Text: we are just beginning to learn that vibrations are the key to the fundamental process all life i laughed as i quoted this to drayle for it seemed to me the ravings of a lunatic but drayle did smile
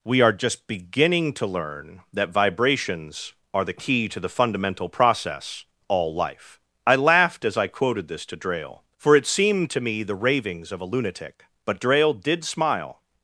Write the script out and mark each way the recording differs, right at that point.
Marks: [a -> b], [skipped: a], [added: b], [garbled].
we are just beginning to learn that vibrations are the key to the fundamental process all life i laughed as i quoted this to drayle for it seemed to me the ravings of a lunatic but drayle did smile